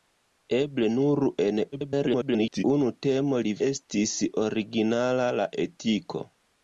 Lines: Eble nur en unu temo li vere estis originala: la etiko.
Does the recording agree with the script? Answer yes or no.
no